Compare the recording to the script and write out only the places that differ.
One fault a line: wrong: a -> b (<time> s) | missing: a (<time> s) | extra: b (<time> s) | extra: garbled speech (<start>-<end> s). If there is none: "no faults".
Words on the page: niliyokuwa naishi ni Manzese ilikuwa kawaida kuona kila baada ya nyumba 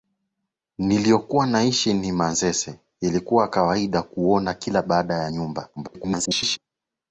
extra: garbled speech (5.8-6.6 s)